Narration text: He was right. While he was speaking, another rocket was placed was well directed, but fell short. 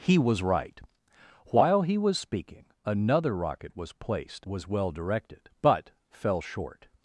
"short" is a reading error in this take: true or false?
false